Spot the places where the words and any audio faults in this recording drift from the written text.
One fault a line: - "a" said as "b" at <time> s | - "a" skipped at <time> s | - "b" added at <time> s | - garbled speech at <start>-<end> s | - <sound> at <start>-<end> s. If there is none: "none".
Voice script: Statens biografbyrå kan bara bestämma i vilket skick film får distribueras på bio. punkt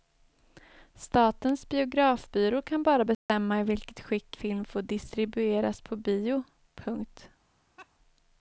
- dropout at 3.1-3.3 s
- laugh at 7.8-7.9 s